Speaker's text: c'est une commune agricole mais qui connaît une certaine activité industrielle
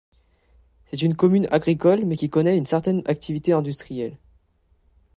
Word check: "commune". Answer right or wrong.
right